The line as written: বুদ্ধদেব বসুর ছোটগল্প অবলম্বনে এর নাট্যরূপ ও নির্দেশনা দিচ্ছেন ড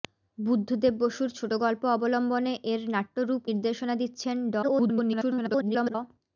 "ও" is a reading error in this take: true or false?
true